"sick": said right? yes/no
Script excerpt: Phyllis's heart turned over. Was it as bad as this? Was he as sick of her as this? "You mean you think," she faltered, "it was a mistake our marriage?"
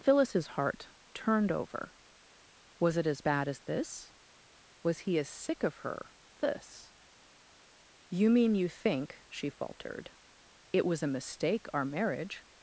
yes